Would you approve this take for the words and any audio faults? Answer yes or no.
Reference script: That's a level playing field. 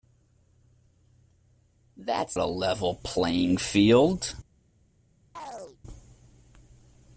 no